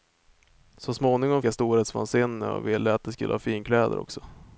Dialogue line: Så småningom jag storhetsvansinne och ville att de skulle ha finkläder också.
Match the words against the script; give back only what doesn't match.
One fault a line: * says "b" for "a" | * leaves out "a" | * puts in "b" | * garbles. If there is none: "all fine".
all fine